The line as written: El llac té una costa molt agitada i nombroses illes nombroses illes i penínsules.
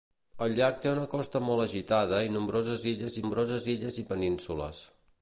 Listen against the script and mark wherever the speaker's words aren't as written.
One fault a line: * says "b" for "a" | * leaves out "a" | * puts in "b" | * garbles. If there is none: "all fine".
all fine